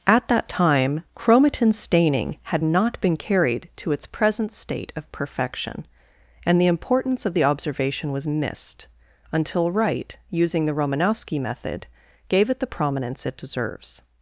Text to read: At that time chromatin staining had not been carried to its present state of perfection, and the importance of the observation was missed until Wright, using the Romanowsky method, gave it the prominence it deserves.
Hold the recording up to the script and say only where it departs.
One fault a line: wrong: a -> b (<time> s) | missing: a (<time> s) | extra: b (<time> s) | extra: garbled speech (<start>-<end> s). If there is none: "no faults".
no faults